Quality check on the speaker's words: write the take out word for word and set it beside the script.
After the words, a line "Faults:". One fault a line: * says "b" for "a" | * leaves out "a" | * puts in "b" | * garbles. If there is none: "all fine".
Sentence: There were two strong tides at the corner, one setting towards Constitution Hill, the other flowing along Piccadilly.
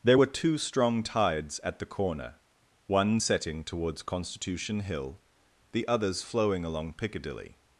There were two strong tides at the corner, one setting towards Constitution Hill, the others flowing along Piccadilly.
Faults:
* says "others" for "other"